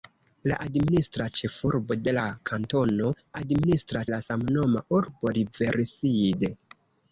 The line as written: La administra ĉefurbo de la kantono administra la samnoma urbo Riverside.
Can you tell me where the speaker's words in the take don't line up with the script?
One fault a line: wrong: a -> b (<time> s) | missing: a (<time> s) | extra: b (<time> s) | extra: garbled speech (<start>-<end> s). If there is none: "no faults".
no faults